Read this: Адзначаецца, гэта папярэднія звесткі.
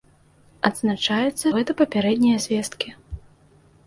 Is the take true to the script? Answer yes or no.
yes